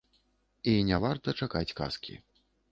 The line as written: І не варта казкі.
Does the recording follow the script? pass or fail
fail